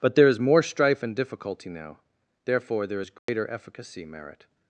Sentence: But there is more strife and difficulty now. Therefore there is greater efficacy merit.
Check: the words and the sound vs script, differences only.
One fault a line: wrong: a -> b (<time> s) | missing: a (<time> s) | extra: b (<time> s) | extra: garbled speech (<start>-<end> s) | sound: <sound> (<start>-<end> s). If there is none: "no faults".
sound: dropout (3.2-3.3 s)